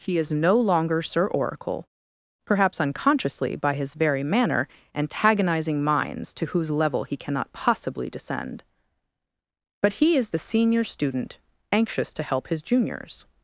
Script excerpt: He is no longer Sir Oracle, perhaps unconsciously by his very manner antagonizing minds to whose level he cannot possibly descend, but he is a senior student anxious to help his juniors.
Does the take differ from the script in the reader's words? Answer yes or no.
yes